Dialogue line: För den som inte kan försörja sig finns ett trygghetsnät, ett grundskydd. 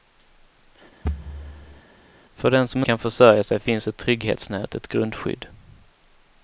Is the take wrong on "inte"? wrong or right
wrong